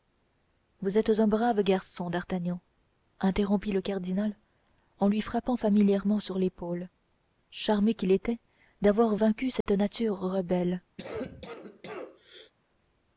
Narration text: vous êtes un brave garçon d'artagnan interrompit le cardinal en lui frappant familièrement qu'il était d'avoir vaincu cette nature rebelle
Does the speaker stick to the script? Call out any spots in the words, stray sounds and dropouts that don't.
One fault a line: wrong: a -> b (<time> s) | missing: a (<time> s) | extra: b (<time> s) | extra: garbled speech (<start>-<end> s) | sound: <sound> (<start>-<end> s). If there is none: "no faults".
extra: sur l'épaule charmé (6.2 s)
sound: dropout (9.6-9.7 s)
sound: cough (11.0-12.5 s)